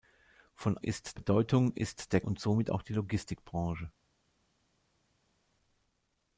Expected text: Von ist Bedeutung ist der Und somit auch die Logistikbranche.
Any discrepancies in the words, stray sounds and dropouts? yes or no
no